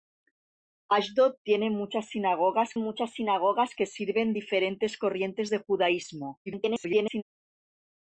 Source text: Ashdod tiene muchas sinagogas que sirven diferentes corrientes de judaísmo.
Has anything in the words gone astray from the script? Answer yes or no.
yes